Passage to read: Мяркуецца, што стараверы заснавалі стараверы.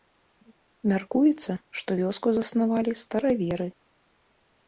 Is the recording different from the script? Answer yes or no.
yes